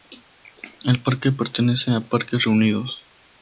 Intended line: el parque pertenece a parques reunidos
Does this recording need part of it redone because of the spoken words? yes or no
no